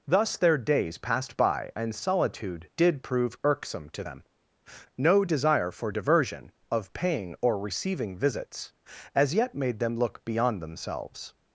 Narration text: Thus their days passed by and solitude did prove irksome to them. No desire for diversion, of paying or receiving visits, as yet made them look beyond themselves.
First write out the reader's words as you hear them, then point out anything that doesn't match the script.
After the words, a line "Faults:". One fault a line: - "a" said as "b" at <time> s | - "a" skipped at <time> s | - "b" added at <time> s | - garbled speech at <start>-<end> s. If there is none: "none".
Thus their days passed by and solitude did prove irksome to them. No desire for diversion, of paying or receiving visits, as yet made them look beyond themselves.
Faults:
none